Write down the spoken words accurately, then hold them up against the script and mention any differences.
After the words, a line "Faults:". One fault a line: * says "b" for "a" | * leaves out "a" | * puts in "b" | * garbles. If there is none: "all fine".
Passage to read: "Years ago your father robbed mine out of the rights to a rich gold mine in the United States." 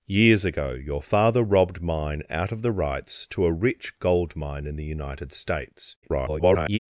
"Years ago your father robbed mine out of the rights to a rich gold mine in the United States." [garbled]
Faults:
* garbles